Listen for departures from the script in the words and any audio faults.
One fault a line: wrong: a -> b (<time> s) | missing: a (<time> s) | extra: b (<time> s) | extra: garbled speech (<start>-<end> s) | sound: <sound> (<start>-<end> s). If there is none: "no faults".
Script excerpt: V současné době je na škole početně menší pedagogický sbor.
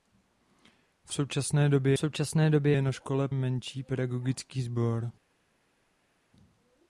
extra: současné době (2.0 s)
missing: početně (3.3 s)